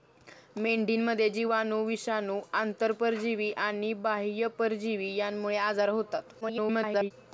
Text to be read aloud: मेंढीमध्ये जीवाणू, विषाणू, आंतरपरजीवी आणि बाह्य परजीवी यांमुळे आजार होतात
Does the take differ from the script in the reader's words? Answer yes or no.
yes